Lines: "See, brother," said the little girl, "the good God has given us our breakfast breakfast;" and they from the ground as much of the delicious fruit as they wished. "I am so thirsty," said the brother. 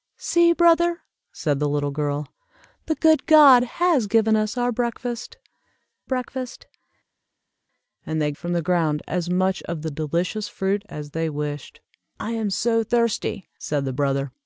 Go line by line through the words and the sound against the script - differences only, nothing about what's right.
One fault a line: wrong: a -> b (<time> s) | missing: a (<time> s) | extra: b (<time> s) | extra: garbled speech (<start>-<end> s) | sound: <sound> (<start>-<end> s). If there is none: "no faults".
no faults